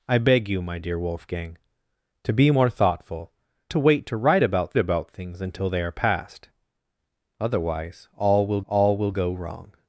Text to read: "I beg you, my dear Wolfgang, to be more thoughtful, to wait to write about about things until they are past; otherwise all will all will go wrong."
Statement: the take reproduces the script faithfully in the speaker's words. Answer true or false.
true